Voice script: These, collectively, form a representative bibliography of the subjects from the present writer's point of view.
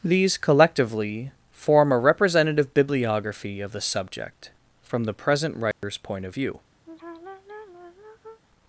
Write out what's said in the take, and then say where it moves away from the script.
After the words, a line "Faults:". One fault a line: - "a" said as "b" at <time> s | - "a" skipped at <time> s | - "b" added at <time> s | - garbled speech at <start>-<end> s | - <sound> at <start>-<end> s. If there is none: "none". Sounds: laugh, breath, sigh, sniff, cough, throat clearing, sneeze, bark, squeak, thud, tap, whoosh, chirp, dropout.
These, collectively, form a representative bibliography of the subject from the present writer's point of view.
Faults:
- "subjects" said as "subject" at 3.8 s
- dropout at 5.7-5.8 s
- sigh at 6.9-8.4 s